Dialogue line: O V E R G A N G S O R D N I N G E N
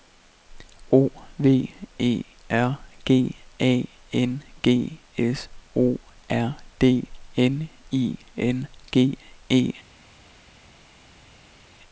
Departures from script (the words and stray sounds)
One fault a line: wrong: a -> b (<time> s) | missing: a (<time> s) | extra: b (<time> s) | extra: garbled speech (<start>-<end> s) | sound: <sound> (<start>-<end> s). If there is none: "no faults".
no faults